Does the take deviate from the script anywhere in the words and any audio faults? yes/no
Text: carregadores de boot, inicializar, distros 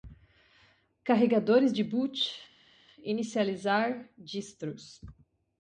no